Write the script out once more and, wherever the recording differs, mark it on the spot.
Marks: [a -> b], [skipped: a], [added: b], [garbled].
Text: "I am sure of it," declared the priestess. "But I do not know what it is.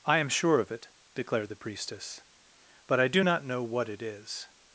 "I am sure of it," declared the priestess. "But I do not know what it is.